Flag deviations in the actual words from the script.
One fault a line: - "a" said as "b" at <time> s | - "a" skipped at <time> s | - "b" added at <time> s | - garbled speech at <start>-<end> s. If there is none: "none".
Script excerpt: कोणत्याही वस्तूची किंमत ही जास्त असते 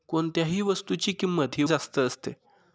none